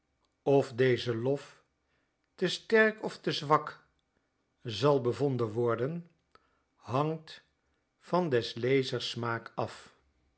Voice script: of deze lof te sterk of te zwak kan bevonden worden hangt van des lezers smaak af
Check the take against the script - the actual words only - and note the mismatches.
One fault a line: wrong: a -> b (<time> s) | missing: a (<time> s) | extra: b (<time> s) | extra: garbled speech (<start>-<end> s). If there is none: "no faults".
wrong: kan -> zal (4.6 s)